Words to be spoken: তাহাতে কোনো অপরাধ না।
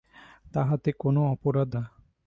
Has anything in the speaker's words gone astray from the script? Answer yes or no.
no